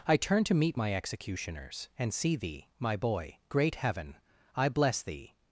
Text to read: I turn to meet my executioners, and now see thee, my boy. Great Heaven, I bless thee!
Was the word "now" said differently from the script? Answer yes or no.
yes